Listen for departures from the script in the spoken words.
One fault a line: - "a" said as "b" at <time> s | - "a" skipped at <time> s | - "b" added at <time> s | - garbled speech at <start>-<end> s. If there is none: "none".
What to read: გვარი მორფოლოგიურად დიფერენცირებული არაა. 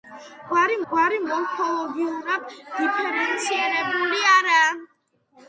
- "გვარი" added at 0.9 s